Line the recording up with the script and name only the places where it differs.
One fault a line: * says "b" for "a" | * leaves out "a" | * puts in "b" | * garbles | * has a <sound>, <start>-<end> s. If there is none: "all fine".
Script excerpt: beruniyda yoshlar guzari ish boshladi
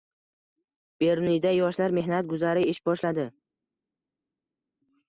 * puts in "mehnat"